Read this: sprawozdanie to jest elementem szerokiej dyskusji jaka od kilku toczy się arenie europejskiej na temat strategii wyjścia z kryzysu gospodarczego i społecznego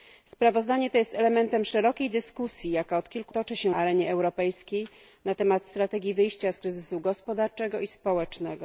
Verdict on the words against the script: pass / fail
pass